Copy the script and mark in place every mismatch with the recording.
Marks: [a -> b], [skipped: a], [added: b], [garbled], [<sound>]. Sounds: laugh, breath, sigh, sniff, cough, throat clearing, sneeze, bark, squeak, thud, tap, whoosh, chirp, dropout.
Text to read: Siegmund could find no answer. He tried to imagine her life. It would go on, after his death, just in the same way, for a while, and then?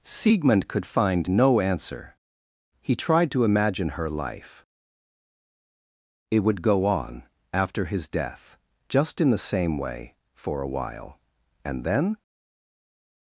Siegmund could find no answer. He tried to imagine her life. It would go on, after his death, just in the same way, for a while, and then?